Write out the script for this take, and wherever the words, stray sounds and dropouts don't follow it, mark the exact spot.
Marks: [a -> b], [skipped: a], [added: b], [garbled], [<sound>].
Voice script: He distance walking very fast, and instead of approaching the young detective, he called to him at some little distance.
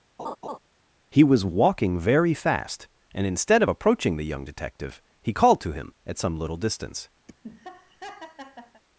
[laugh] He [distance -> was] walking very fast, and instead of approaching the young detective, he called to him at some little distance. [laugh]